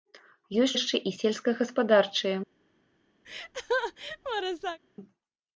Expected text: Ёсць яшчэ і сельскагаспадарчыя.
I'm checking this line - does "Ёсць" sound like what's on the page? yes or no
yes